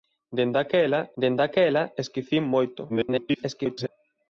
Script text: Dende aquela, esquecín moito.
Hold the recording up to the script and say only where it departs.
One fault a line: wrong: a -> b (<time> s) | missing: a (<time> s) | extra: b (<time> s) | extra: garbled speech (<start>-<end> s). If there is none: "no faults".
extra: dende aquela (1.2 s)
extra: garbled speech (2.9-3.9 s)